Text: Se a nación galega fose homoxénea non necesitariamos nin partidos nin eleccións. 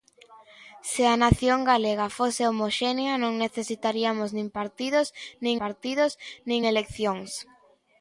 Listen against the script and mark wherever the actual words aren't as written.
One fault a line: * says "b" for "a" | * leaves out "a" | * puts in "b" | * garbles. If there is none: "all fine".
* puts in "partidos nin"